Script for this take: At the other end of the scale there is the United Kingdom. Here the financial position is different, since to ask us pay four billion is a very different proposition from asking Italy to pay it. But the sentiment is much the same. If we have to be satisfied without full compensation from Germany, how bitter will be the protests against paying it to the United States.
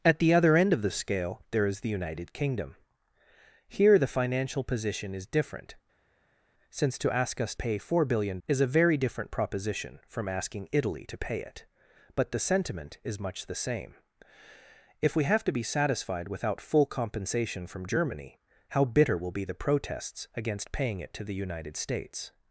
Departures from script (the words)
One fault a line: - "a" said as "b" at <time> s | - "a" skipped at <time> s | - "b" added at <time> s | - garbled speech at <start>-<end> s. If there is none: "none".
none